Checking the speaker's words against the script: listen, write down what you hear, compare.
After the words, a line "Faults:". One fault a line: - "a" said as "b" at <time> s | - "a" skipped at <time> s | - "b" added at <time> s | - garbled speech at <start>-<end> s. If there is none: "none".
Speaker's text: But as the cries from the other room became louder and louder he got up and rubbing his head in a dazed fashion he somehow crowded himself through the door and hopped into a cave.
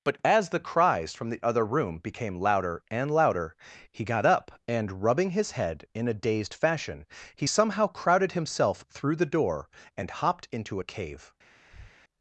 But as the cries from the other room became louder and louder he got up and rubbing his head in a dazed fashion he somehow crowded himself through the door and hopped into a cave.
Faults:
none